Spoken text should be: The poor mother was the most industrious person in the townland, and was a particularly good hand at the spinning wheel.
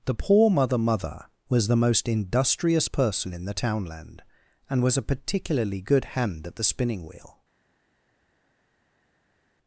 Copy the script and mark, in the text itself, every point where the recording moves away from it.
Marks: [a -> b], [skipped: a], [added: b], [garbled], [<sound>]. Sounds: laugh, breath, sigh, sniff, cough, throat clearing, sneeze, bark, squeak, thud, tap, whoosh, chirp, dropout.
The poor mother [added: mother] was the most industrious person in the townland, and was a particularly good hand at the spinning wheel.